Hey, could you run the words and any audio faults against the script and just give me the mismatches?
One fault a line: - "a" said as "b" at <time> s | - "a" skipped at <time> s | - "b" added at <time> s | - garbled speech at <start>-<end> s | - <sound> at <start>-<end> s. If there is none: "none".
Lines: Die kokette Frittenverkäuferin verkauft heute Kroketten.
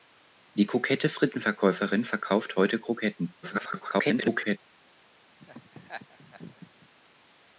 - garbled speech at 3.4-4.6 s
- laugh at 5.4-6.9 s